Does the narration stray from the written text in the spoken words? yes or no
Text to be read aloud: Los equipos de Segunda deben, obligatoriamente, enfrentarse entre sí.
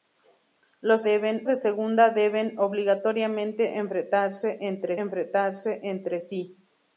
yes